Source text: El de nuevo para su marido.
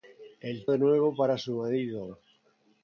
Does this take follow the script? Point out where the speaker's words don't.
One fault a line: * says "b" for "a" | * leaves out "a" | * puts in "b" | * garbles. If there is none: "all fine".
all fine